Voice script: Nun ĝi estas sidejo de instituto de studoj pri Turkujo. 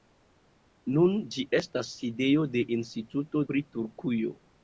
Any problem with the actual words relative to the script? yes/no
yes